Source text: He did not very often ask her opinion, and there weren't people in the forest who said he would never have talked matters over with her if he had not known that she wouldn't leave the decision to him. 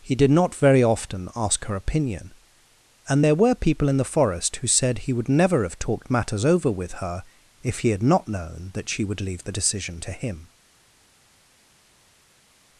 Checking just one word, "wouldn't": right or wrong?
wrong